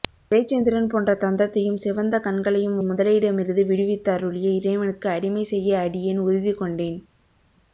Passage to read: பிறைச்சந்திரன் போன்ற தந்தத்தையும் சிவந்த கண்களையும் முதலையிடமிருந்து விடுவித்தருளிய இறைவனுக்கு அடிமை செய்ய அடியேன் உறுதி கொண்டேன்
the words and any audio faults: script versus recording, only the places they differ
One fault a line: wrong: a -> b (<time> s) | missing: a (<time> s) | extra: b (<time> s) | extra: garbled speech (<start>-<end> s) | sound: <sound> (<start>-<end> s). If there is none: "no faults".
no faults